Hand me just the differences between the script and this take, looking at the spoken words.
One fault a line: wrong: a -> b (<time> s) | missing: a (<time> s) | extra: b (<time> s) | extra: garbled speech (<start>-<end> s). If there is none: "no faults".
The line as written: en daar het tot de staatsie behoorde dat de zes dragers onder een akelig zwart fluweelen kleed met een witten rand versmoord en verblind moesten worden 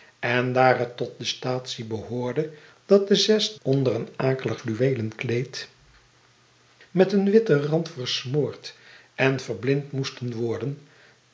missing: dragers (3.5 s)
missing: zwart (4.6 s)